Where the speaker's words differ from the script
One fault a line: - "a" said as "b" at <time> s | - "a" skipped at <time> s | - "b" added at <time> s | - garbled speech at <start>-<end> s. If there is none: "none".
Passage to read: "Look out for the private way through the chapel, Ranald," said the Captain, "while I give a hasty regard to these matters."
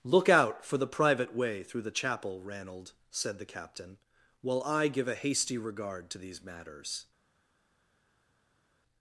none